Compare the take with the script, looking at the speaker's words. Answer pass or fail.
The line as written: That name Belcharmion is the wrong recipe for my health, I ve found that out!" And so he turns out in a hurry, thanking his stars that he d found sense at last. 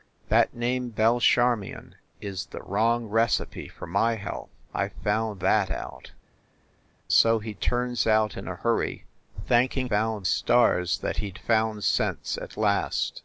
fail